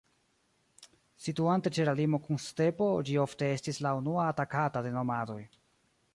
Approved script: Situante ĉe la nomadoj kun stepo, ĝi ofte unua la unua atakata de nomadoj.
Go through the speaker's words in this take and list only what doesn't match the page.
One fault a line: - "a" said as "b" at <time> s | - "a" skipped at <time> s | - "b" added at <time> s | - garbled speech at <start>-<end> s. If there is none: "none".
- "nomadoj" said as "limo" at 2.0 s
- "unua" said as "estis" at 3.6 s